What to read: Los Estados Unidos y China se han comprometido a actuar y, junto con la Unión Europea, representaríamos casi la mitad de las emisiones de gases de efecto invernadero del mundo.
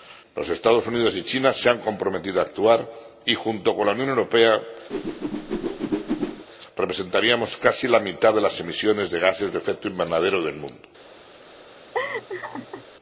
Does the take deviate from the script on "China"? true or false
false